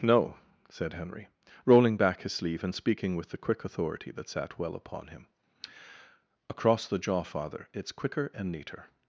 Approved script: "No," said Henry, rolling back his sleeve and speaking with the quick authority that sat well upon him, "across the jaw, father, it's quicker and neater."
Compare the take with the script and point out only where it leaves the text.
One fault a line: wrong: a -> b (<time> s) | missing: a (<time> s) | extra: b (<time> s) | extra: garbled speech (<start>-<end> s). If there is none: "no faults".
no faults